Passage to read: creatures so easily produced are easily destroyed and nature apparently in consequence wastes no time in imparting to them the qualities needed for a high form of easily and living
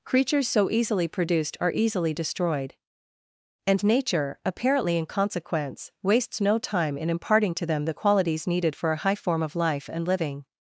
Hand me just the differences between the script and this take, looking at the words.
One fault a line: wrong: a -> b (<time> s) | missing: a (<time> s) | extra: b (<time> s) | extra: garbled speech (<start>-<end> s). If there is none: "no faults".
wrong: easily -> life (9.6 s)